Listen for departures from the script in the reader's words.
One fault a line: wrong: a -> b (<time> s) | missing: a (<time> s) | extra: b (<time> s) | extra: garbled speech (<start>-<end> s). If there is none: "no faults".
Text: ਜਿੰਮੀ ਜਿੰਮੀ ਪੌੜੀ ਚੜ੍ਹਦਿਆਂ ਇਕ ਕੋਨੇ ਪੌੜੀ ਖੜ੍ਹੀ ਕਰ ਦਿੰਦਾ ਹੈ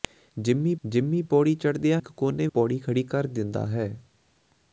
no faults